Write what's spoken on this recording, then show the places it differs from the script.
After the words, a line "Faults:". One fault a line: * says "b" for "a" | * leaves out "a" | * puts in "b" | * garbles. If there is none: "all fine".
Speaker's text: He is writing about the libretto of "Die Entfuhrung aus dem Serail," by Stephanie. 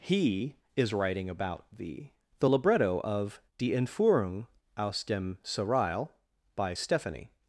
He is writing about the the libretto of "Die Entfuhrung aus dem Serail," by Stephanie.
Faults:
* puts in "the"